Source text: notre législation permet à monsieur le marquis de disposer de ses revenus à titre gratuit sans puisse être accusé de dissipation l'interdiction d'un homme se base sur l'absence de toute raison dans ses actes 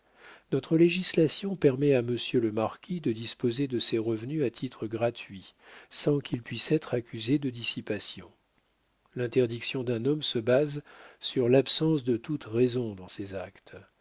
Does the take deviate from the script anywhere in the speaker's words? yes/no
yes